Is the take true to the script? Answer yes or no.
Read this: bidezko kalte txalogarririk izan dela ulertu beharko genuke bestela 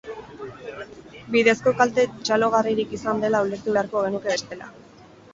yes